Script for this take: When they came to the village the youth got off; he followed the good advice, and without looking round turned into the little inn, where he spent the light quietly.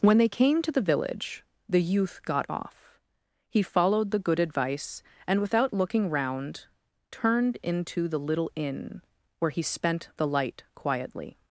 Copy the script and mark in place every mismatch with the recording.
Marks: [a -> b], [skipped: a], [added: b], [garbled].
When they came to the village the youth got off; he followed the good advice, and without looking round turned into the little inn, where he spent the light quietly.